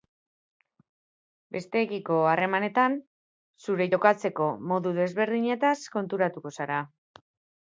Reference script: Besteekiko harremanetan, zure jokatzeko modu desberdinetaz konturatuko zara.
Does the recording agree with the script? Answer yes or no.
yes